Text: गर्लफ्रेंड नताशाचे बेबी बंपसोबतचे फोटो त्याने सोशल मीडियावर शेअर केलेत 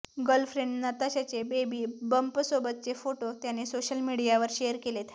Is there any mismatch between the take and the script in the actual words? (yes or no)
no